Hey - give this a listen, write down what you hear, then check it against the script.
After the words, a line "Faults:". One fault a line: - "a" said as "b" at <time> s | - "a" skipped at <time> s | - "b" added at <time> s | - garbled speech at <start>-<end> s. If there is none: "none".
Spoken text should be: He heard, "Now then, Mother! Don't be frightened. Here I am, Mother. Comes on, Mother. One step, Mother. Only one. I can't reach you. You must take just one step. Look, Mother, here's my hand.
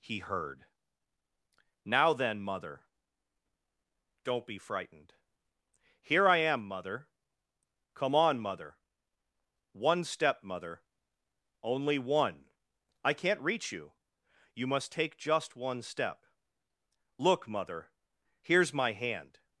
He heard, "Now then, Mother! Don't be frightened. Here I am, Mother. Come on, Mother. One step, Mother. Only one. I can't reach you. You must take just one step. Look, Mother, here's my hand.
Faults:
- "Comes" said as "Come" at 7.9 s